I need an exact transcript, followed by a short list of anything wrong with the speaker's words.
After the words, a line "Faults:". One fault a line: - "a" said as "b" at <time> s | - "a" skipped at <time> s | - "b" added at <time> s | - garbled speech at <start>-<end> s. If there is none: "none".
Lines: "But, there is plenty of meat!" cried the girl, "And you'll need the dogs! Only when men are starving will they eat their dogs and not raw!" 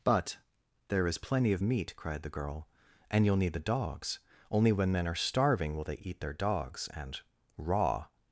"But, there is plenty of meat!" cried the girl, "And you'll need the dogs! Only when men are starving will they eat their dogs and raw!"
Faults:
- "not" skipped at 7.2 s